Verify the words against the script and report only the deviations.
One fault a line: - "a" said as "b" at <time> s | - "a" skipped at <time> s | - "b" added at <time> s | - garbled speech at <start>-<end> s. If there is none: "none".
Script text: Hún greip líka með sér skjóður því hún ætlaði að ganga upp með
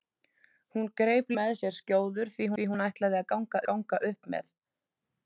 - "líka" skipped at 1.3 s
- "því" added at 2.5 s
- "ganga" added at 3.7 s